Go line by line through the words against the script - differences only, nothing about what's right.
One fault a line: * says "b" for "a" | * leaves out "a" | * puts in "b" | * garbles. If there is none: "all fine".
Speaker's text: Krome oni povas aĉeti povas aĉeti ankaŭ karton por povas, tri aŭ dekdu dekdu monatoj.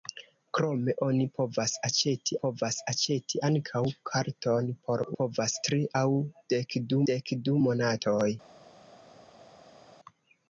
all fine